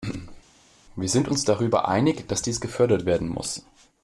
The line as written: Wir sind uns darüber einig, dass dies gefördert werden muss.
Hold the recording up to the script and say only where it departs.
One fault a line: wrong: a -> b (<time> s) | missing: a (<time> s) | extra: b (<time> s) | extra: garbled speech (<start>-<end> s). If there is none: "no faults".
no faults